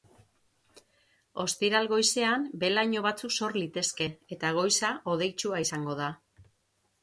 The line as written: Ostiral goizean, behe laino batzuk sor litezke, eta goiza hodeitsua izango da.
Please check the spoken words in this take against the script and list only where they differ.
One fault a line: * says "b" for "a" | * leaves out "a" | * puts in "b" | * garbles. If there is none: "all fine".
all fine